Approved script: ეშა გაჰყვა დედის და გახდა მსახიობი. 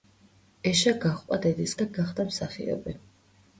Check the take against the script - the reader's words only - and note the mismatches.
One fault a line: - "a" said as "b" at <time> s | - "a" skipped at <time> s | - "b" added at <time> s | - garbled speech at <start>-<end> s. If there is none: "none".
none